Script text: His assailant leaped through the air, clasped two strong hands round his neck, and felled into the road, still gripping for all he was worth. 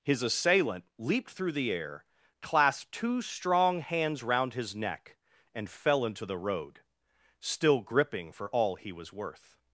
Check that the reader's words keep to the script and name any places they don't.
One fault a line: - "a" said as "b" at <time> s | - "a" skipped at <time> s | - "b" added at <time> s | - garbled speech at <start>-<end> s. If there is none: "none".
- "felled" said as "fell" at 5.7 s